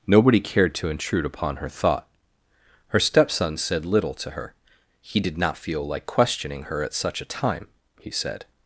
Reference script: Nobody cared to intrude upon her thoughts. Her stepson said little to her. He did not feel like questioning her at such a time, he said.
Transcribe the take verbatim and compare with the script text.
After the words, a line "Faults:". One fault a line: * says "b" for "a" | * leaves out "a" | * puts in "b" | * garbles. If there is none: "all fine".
Nobody cared to intrude upon her thought. Her stepson said little to her. He did not feel like questioning her at such a time, he said.
Faults:
* says "thought" for "thoughts"